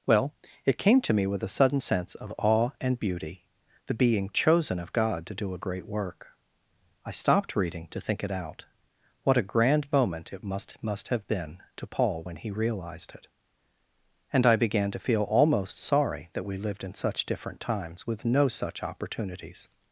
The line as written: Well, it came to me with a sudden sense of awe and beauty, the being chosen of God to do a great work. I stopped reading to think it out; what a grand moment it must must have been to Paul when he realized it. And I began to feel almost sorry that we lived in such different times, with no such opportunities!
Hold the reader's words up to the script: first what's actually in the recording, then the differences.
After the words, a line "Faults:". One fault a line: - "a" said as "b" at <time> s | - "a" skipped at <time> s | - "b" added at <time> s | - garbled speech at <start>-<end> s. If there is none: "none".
Well, it came to me with a sudden sense of awe and beauty, the being chosen of God to do a great work. I stopped reading to think it out; what a grand moment it must must have been to Paul when he realized it. And I began to feel almost sorry that we lived in such different times, with no such opportunities!
Faults:
none